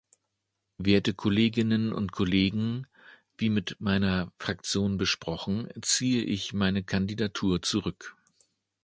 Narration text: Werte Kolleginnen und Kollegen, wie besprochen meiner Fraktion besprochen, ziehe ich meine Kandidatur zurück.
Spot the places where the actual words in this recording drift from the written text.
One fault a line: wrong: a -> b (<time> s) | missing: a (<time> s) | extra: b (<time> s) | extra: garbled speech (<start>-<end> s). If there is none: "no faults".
wrong: besprochen -> mit (3.5 s)